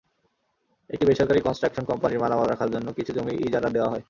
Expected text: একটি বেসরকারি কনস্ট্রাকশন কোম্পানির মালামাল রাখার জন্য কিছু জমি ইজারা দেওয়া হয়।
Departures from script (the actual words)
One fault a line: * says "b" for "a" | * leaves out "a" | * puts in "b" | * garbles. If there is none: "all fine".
all fine